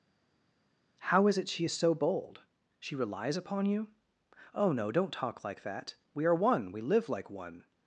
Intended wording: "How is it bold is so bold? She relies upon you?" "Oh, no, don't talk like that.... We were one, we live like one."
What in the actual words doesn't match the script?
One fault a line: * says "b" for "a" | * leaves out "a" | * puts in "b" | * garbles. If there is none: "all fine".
* says "she" for "bold"
* says "are" for "were"